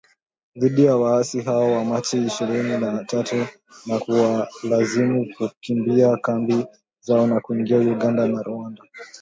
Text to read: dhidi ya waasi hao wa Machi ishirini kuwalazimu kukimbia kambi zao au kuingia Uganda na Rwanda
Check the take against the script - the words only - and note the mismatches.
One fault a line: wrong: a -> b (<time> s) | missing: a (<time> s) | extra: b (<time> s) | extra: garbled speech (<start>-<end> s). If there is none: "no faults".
extra: na tatu na (2.8 s)
wrong: au -> na (7.3 s)